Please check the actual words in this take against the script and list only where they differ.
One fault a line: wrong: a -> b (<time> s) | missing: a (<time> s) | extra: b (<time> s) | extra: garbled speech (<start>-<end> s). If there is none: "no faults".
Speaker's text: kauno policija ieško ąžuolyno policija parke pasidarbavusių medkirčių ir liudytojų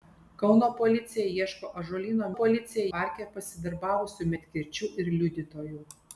no faults